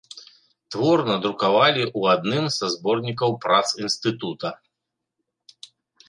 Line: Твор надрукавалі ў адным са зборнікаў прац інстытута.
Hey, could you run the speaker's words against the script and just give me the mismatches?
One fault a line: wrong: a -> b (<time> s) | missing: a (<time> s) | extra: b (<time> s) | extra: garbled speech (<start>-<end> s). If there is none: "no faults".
no faults